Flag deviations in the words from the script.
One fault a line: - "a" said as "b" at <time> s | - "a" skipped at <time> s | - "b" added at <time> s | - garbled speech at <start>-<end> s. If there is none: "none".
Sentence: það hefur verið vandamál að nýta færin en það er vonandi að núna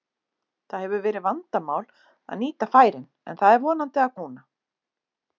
none